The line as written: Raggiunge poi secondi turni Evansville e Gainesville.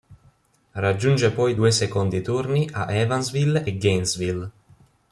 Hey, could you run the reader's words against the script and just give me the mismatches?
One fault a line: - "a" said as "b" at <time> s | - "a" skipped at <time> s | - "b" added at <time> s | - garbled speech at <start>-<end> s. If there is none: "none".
- "due" added at 1.5 s
- "a" added at 2.7 s